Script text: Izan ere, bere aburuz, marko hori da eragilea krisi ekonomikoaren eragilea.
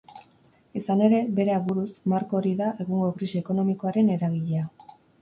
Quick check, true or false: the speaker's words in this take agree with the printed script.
false